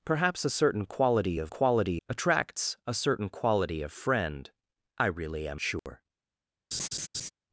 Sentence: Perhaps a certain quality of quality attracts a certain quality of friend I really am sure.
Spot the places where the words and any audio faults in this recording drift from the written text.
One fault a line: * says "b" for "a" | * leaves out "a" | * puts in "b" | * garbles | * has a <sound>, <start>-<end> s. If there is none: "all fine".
* has a dropout, 5.8-5.9 s
* has a laugh, 6.7-7.3 s